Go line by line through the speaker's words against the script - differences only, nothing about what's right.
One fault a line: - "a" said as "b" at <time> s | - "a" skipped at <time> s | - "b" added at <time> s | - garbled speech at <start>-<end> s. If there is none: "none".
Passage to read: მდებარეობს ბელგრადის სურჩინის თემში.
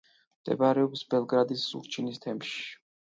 none